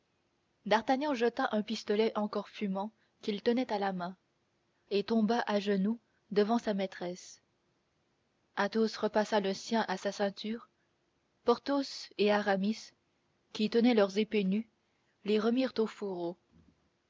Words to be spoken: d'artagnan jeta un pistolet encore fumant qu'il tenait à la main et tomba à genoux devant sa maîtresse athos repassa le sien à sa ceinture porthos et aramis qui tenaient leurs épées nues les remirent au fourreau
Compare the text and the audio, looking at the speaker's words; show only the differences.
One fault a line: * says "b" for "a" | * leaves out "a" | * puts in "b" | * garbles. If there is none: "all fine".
all fine